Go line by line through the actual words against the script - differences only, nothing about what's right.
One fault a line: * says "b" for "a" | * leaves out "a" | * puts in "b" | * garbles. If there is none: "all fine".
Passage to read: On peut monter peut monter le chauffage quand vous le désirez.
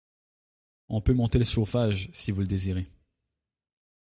* leaves out "peut monter"
* says "si" for "quand"